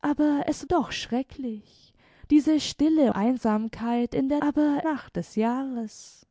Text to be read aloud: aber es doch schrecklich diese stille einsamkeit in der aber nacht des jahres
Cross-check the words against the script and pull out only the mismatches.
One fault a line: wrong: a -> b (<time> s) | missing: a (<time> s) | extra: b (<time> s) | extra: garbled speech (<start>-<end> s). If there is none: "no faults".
no faults